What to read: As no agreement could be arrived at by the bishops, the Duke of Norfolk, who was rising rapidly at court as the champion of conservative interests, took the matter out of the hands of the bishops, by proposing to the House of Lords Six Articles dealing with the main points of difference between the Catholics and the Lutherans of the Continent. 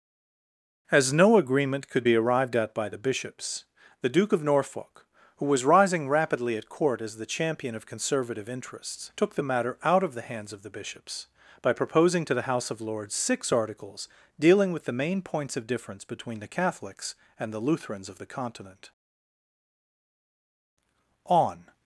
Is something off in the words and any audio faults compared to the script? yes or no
yes